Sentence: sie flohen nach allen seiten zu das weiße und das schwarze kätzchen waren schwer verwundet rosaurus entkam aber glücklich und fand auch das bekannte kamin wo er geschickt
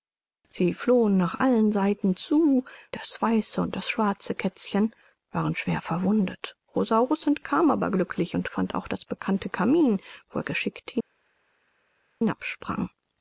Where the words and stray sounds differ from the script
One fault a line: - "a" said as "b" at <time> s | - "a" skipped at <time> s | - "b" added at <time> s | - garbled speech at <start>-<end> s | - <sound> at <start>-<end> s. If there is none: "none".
none